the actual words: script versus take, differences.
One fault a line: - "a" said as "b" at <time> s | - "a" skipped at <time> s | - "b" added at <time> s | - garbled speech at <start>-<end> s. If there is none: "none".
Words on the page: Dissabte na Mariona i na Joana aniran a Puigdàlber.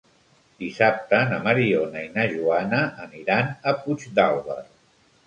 none